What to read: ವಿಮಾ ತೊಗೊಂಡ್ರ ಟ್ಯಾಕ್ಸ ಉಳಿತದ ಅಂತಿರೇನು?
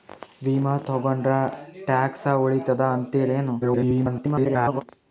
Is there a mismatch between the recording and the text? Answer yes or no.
yes